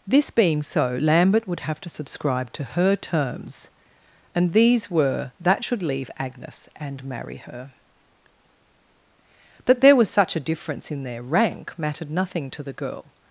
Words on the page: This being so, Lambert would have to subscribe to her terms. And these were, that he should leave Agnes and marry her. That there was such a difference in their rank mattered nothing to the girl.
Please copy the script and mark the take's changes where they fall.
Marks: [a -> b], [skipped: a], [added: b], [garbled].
This being so, Lambert would have to subscribe to her terms. And these were, that [skipped: he] should leave Agnes and marry her. That there was such a difference in their rank mattered nothing to the girl.